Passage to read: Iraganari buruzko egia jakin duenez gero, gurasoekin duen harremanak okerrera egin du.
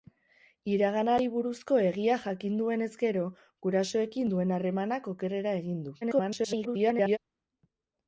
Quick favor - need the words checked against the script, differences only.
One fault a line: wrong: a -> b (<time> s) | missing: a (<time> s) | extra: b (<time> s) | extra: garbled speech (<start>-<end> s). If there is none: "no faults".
extra: garbled speech (6.0-7.2 s)